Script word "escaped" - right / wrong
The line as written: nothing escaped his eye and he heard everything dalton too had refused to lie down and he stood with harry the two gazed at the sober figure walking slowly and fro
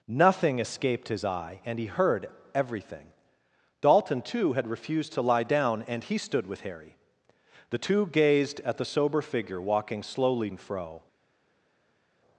right